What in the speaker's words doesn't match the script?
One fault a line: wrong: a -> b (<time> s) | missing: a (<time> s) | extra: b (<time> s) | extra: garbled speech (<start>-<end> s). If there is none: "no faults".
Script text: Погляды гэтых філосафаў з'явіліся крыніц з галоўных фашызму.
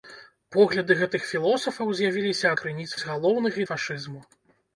no faults